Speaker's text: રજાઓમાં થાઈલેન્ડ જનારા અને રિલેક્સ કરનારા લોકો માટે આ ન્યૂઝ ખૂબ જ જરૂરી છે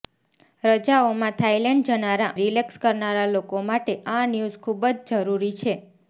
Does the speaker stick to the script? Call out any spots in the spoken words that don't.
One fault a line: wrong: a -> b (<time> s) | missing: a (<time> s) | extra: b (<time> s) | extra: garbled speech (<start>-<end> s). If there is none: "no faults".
missing: અને (2.3 s)